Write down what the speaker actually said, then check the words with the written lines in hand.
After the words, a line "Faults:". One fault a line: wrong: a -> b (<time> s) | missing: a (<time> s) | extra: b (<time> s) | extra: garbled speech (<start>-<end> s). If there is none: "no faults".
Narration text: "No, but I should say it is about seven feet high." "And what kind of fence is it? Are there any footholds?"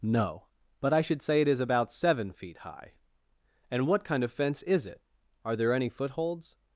"No, but I should say it is about seven feet high." "And what kind of fence is it? Are there any footholds?"
Faults:
no faults